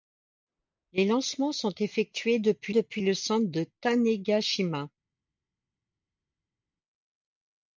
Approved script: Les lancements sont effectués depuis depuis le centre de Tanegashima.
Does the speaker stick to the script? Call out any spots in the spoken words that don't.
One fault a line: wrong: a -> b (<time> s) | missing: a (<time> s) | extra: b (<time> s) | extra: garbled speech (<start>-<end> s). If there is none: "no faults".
no faults